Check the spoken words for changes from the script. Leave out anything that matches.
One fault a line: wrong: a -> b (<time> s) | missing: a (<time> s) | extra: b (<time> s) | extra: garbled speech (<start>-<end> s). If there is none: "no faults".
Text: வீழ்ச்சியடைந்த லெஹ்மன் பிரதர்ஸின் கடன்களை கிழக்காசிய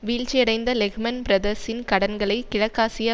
no faults